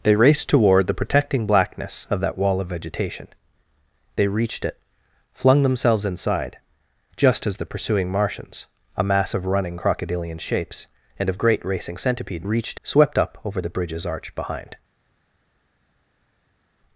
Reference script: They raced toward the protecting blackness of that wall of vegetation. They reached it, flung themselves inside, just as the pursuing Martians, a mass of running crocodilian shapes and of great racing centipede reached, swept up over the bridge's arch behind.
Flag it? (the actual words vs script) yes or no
no